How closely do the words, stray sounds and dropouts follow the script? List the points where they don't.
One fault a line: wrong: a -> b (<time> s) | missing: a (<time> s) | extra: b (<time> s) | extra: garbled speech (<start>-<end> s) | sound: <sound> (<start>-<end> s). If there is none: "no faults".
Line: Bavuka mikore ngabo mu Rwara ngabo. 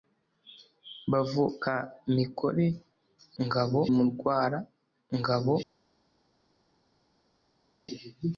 no faults